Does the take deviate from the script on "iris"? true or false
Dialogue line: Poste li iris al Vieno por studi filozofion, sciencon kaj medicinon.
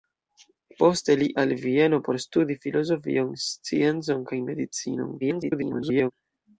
true